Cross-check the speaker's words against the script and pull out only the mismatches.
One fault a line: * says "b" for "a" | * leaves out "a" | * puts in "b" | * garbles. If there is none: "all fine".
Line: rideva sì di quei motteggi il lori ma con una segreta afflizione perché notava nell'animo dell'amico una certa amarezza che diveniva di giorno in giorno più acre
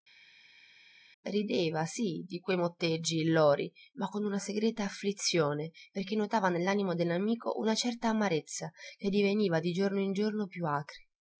all fine